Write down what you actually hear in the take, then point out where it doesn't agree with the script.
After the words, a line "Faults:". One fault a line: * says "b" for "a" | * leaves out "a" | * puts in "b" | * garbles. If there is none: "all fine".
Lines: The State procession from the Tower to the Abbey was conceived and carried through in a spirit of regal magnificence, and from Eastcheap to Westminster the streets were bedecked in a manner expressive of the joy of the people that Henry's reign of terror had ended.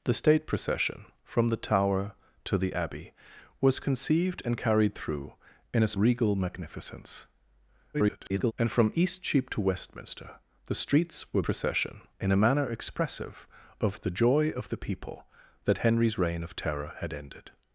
The State procession from the Tower to the Abbey was conceived and carried through in a regal magnificence, [garbled] and from Eastcheap to Westminster the streets were procession in a manner expressive of the joy of the people that Henry's reign of terror had ended.
Faults:
* leaves out "spirit of"
* garbles
* says "procession" for "bedecked"